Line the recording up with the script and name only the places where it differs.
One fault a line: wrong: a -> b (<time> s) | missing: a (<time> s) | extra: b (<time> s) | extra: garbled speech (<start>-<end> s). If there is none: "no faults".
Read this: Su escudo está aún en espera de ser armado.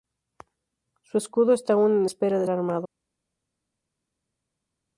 missing: ser (2.5 s)